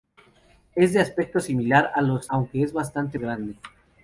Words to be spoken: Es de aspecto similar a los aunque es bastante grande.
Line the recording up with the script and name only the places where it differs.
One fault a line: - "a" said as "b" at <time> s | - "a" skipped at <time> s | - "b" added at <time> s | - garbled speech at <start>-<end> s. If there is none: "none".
none